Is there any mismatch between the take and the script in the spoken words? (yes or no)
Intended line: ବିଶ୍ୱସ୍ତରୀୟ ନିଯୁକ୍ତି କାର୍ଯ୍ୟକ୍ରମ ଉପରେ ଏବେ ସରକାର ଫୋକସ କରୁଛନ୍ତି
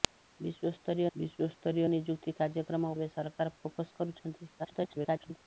yes